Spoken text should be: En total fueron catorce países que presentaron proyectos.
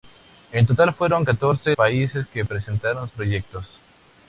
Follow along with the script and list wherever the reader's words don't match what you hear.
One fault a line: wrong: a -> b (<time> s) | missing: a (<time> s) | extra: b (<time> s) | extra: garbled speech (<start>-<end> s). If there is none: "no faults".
no faults